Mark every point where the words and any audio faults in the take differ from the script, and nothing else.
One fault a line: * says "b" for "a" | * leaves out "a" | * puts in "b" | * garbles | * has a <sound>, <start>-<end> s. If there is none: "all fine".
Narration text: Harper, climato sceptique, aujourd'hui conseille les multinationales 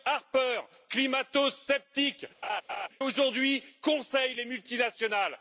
* has a laugh, 2.4-2.9 s